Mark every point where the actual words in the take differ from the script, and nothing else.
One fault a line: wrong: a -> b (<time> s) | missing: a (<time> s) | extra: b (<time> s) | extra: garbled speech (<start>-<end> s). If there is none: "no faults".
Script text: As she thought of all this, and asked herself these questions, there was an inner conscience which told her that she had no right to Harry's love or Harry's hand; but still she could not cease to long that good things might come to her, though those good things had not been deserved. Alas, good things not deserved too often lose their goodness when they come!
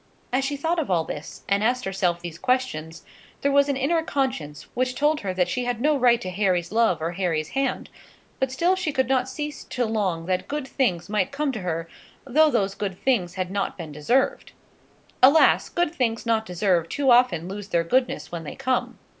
no faults